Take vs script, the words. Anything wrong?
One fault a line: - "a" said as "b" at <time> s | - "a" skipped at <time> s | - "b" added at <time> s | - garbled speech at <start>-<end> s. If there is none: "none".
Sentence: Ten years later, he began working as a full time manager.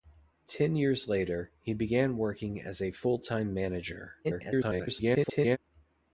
- garbled speech at 4.2-5.6 s